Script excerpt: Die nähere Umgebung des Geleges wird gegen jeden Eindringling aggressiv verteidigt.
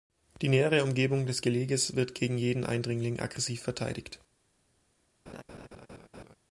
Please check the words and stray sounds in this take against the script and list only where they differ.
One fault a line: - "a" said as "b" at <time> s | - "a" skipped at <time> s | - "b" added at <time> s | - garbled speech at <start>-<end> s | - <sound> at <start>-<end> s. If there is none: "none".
- laugh at 5.3-6.3 s